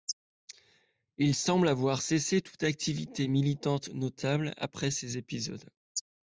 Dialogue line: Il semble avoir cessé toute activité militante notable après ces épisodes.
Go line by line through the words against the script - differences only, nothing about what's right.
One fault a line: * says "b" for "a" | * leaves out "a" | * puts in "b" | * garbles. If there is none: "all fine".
all fine